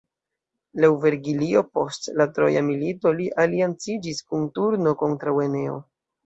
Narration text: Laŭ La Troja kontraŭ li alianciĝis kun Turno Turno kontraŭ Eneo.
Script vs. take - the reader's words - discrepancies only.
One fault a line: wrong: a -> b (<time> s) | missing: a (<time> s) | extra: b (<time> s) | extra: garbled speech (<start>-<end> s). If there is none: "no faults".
extra: Vergilio post (1.0 s)
wrong: kontraŭ -> milito (2.7 s)
missing: Turno (4.9 s)